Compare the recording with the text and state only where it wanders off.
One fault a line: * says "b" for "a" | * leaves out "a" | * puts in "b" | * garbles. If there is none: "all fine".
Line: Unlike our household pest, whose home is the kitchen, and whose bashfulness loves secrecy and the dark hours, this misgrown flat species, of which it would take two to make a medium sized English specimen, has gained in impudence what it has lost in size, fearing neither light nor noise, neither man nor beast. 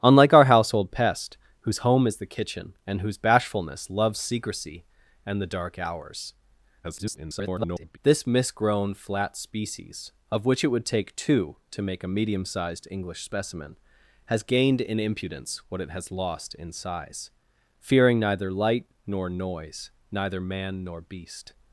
* garbles